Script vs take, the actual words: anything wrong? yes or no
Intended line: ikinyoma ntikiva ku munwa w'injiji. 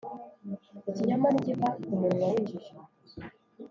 no